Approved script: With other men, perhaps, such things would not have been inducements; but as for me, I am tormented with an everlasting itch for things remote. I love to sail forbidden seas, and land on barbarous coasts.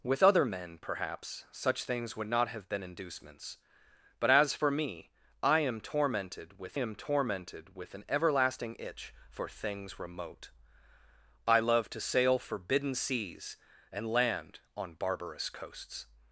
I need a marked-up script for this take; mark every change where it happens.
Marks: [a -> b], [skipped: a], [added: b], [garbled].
With other men, perhaps, such things would not have been inducements; but as for me, I am tormented with [added: am tormented with] an everlasting itch for things remote. I love to sail forbidden seas, and land on barbarous coasts.